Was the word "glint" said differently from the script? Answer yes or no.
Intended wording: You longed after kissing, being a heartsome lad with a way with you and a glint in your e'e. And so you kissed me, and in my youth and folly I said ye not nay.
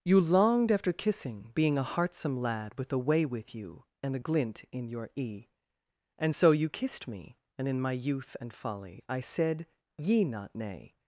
no